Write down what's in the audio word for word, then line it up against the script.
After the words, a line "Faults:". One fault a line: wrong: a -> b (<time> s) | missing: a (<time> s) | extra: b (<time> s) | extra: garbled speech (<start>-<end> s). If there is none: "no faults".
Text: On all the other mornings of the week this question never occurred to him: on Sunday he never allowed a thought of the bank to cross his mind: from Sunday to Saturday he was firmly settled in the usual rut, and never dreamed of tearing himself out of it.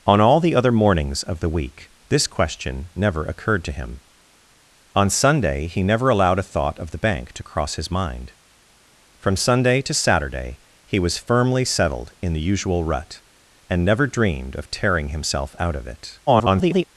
On all the other mornings of the week this question never occurred to him: on Sunday he never allowed a thought of the bank to cross his mind: from Sunday to Saturday he was firmly settled in the usual rut, and never dreamed of tearing himself out of it. [garbled]
Faults:
extra: garbled speech (16.3-16.8 s)